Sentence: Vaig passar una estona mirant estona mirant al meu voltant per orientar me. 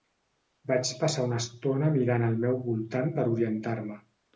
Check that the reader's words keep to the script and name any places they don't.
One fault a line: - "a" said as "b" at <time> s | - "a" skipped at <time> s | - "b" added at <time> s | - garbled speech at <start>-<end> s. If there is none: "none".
- "estona mirant" skipped at 2.3 s